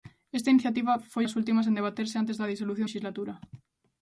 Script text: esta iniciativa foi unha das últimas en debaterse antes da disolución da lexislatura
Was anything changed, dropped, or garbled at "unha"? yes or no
yes